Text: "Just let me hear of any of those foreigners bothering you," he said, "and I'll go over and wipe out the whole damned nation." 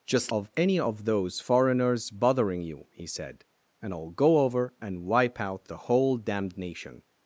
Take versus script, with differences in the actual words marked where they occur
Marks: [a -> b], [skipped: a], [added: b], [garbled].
"Just [skipped: let me hear] of any of those foreigners bothering you," he said, "and I'll go over and wipe out the whole damned nation."